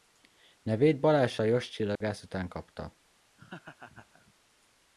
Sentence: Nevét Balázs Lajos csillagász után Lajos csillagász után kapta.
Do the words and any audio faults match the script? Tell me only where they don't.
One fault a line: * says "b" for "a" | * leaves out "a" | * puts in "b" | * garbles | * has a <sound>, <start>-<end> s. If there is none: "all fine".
* has a dropout, 2.0-2.0 s
* leaves out "Lajos csillagász után"
* has a laugh, 3.4-4.3 s